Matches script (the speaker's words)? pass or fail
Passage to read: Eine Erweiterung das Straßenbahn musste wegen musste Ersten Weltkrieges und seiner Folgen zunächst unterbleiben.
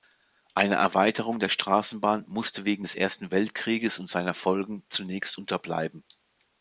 fail